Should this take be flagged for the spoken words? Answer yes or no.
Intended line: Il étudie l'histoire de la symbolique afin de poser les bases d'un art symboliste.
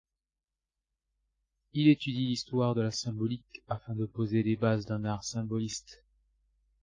no